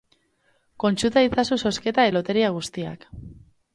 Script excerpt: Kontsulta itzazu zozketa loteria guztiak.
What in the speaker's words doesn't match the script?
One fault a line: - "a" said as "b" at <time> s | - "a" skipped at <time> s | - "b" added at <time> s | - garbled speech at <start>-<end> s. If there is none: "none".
none